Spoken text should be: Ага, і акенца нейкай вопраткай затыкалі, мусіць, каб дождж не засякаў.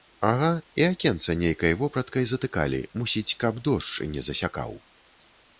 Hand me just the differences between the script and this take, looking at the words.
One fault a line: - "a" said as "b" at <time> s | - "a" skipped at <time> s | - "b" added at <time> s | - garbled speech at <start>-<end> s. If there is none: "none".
none